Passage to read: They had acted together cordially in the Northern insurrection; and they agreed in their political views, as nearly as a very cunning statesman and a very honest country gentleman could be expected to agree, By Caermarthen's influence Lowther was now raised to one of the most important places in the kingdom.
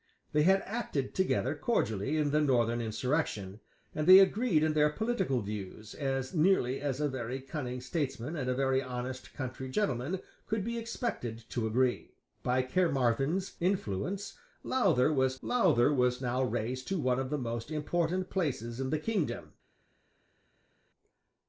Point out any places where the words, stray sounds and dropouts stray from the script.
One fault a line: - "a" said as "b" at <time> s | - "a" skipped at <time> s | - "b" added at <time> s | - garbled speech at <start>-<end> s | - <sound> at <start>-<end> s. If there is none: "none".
- "Lowther was" added at 15.4 s